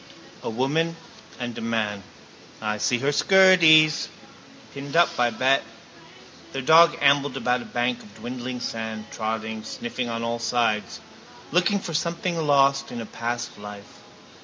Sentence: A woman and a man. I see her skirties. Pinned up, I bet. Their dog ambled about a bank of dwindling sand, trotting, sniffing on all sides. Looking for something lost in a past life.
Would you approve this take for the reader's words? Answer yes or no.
yes